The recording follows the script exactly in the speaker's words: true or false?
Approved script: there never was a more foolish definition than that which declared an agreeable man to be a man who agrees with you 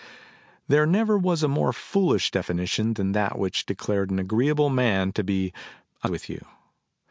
false